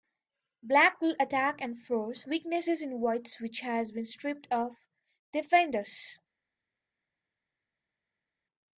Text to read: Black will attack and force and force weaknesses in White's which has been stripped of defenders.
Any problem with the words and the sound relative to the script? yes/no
yes